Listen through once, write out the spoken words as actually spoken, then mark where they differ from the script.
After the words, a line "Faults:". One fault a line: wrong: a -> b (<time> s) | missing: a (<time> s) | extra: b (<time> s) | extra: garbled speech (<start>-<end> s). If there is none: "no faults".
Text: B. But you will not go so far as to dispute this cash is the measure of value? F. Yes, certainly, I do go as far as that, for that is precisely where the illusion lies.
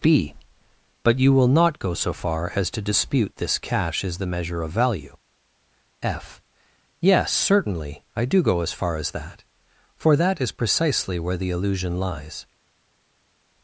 B. But you will not go so far as to dispute this cash is the measure of value? F. Yes, certainly, I do go as far as that, for that is precisely where the illusion lies.
Faults:
no faults